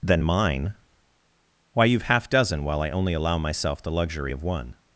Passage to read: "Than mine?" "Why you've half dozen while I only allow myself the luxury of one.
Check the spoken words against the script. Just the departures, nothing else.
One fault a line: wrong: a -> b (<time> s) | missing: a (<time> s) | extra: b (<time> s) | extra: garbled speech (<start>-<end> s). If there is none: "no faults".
no faults